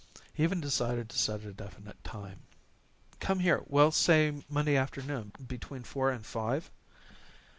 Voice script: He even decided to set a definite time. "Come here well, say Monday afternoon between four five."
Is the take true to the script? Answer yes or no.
no